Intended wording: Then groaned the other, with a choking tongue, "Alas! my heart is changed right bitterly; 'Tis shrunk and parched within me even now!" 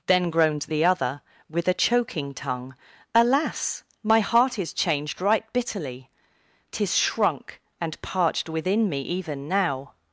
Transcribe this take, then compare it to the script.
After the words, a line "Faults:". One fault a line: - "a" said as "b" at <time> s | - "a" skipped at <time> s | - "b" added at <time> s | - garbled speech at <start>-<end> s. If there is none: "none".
Then groaned the other, with a choking tongue, "Alas! my heart is changed right bitterly; 'Tis shrunk and parched within me even now!"
Faults:
none